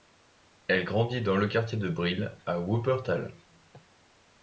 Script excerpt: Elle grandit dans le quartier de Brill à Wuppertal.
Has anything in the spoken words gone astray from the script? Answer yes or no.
no